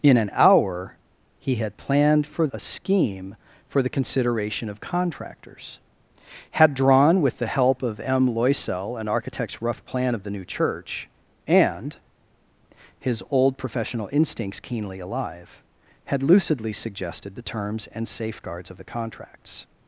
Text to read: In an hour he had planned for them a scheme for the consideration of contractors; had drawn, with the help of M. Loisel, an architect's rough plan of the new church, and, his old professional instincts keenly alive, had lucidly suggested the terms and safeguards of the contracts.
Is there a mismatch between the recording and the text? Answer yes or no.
yes